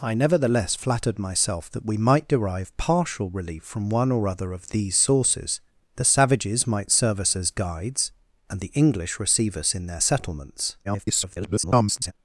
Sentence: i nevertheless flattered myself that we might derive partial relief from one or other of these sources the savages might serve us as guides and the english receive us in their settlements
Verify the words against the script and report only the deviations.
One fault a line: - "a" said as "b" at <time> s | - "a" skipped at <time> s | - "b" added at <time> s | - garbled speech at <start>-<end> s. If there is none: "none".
- garbled speech at 10.8-12.1 s